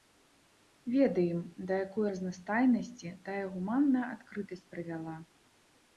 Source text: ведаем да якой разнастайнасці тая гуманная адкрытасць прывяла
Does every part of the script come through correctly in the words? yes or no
yes